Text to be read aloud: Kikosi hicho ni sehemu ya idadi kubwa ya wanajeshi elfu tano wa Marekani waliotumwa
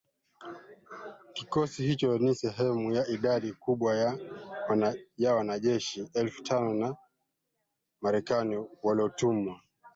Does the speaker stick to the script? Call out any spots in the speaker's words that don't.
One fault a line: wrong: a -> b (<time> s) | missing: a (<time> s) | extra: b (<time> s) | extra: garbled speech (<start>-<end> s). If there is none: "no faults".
no faults